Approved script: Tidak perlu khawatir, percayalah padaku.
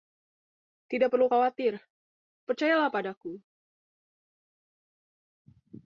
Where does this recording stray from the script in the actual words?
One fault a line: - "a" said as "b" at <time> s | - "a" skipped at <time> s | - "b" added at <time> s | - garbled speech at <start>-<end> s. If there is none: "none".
none